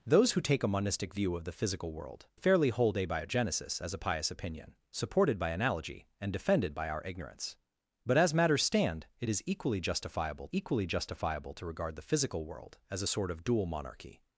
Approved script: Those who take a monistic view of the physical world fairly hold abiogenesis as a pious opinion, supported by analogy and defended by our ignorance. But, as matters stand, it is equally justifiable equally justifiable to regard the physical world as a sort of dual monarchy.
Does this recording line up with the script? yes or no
yes